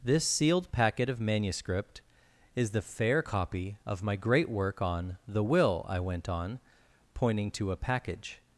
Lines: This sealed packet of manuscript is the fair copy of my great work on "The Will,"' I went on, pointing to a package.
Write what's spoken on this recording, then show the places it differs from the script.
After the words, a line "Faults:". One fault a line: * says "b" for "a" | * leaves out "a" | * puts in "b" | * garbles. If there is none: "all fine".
This sealed packet of manuscript is the fair copy of my great work on "The Will,"' I went on, pointing to a package.
Faults:
all fine